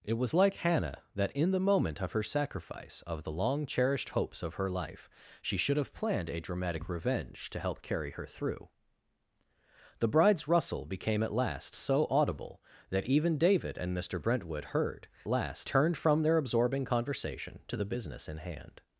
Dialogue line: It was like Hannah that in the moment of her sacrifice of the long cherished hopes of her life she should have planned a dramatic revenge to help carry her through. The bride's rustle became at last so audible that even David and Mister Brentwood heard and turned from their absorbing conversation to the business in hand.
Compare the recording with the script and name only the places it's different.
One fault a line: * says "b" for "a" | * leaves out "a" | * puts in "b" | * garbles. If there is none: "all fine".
* says "last" for "and"